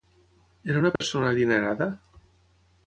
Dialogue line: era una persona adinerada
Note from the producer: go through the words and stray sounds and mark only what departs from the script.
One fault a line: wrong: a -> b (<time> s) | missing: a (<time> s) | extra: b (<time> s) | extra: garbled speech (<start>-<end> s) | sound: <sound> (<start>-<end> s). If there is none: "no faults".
sound: dropout (1.0-1.0 s)